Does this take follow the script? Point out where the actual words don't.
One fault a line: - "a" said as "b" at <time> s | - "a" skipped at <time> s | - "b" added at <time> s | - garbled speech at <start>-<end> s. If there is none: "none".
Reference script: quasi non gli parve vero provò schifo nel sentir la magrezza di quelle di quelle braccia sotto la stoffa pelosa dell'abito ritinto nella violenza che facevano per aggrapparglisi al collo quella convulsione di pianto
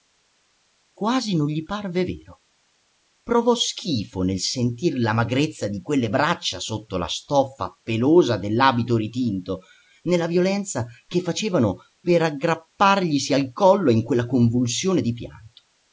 - "di quelle" skipped at 6.1 s
- "in" added at 13.9 s